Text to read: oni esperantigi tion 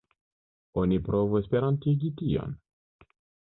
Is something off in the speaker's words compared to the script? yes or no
yes